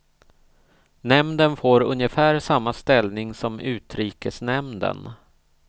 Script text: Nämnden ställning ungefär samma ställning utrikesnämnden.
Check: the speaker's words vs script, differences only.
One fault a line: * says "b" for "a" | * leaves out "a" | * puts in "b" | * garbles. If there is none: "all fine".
* says "får" for "ställning"
* puts in "som"